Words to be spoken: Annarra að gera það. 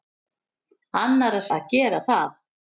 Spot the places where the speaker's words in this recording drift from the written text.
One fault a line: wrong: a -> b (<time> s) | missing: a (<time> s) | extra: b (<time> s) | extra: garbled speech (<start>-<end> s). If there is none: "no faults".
no faults